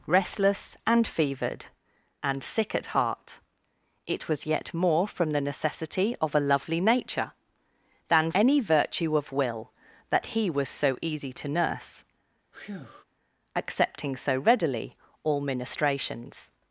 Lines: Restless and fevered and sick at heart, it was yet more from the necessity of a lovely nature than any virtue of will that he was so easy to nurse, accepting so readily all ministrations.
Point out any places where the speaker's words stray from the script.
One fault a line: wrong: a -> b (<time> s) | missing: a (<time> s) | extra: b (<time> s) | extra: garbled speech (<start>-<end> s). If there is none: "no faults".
no faults